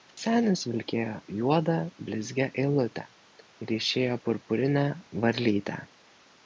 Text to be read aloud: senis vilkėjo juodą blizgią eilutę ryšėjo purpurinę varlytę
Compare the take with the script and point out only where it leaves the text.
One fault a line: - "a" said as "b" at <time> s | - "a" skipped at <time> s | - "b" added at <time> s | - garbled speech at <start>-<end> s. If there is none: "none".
none